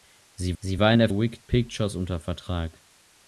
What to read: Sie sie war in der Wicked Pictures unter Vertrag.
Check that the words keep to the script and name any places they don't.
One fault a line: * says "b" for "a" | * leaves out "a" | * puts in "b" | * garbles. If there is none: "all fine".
all fine